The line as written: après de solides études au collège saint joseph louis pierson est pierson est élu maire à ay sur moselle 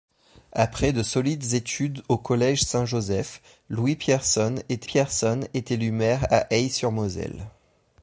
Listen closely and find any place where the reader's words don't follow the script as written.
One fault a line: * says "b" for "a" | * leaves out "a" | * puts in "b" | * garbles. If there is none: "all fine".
all fine